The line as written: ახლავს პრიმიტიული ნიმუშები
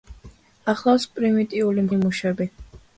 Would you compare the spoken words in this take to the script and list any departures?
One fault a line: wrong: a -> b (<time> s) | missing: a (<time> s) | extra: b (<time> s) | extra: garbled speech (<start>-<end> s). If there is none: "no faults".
no faults